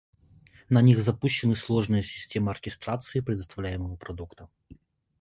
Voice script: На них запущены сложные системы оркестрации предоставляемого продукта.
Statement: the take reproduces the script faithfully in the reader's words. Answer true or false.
true